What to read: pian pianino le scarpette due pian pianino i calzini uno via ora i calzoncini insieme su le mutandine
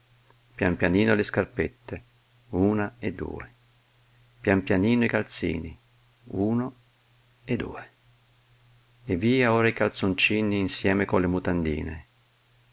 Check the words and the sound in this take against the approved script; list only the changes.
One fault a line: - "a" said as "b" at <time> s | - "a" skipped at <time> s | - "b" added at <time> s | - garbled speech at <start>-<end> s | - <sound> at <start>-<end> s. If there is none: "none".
- "una e" added at 2.5 s
- "e due e" added at 7.4 s
- "su" said as "con" at 11.1 s